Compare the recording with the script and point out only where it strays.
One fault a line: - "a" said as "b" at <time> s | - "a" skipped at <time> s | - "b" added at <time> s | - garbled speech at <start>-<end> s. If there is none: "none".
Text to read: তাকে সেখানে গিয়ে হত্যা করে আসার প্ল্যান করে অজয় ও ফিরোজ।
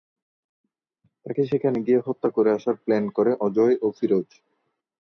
none